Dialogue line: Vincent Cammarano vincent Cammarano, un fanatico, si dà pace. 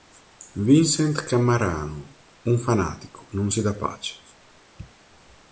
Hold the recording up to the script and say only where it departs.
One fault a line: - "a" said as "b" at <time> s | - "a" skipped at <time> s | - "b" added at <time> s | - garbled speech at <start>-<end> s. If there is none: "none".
- "vincent Cammarano" skipped at 2.1 s
- "non" added at 3.3 s